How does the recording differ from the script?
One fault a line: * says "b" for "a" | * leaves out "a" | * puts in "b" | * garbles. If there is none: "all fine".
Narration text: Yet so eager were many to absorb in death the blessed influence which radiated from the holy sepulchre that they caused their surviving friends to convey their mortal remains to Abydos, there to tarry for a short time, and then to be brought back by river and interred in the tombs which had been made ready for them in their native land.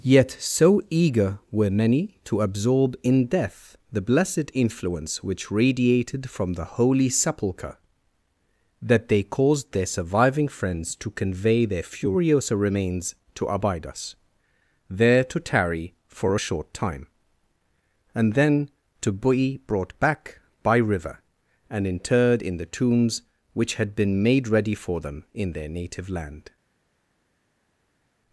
* says "furiosa" for "mortal"